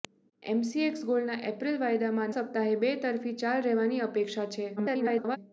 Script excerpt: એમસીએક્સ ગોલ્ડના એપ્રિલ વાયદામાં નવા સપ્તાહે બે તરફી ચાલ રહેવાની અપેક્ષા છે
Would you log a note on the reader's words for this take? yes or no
yes